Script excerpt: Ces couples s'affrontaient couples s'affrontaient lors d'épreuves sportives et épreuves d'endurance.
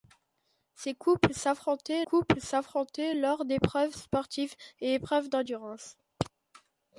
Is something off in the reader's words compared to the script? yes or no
no